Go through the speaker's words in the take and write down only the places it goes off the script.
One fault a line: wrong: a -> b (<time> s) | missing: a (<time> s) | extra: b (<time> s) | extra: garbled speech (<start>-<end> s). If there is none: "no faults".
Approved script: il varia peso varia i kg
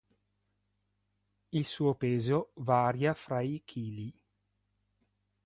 wrong: varia -> suo (1.7 s)
extra: fra (3.1 s)